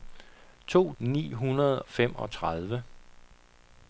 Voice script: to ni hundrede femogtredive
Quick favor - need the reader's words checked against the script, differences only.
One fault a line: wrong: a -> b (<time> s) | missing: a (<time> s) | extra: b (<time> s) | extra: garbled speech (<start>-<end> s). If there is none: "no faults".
no faults